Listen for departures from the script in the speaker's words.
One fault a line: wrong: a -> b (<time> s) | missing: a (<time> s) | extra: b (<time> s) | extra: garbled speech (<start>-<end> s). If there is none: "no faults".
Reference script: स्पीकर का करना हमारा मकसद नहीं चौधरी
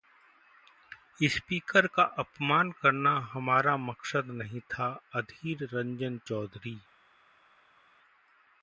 extra: अपमान (2.2 s)
extra: था अधीर रंजन (4.7 s)